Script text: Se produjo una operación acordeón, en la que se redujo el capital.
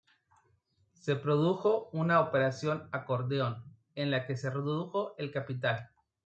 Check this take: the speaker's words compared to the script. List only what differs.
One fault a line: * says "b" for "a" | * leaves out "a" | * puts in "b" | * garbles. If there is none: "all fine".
all fine